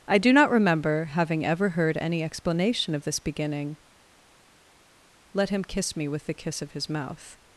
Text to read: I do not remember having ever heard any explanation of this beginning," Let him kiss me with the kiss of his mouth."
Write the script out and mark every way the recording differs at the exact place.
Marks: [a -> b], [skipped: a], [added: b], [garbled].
I do not remember having ever heard any explanation of this beginning," Let him kiss me with the kiss of his mouth."